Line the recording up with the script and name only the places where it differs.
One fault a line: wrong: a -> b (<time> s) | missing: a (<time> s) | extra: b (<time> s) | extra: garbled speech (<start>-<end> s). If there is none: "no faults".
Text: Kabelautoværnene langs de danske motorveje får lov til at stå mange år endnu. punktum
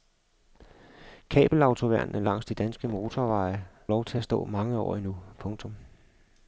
missing: får (3.6 s)